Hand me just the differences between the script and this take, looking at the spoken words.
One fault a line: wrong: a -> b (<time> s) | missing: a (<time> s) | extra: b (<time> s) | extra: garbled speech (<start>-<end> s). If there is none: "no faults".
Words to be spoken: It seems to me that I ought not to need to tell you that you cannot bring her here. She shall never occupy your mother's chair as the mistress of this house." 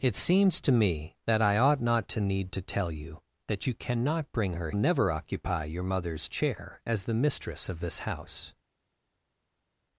missing: here She shall (4.7 s)